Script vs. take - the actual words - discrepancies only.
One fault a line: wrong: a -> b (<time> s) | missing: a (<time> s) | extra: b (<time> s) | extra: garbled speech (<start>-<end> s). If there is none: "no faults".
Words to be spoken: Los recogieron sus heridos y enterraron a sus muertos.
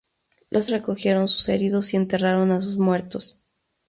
no faults